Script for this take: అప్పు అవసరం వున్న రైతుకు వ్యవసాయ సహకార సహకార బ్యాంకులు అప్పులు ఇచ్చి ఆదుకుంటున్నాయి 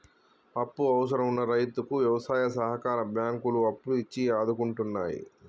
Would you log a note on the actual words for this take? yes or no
yes